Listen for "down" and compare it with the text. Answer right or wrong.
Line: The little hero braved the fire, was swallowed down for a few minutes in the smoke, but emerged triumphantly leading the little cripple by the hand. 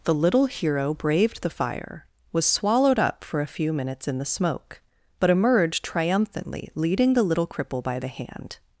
wrong